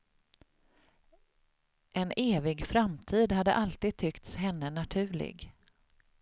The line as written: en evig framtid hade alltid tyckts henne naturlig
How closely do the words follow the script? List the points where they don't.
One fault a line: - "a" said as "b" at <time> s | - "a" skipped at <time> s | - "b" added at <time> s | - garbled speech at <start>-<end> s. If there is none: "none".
none